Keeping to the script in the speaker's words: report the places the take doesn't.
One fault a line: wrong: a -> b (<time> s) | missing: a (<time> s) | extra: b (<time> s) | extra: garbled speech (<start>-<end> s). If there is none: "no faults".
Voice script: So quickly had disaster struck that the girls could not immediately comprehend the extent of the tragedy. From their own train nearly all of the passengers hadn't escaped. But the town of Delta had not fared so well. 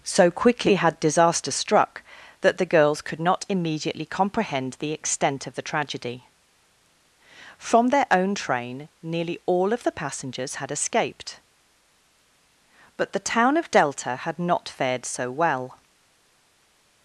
wrong: hadn't -> had (10.5 s)